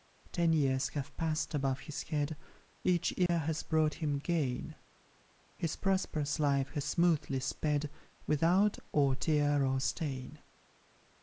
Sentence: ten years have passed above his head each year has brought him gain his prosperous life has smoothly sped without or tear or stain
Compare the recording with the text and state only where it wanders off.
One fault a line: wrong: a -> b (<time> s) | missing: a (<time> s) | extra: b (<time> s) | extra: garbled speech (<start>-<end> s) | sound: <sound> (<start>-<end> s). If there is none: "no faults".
sound: dropout (3.3-3.3 s)